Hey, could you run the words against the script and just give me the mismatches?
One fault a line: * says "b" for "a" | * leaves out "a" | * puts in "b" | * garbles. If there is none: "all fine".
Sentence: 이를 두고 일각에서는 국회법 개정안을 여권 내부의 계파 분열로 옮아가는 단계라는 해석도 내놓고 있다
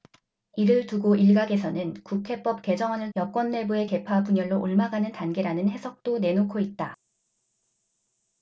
all fine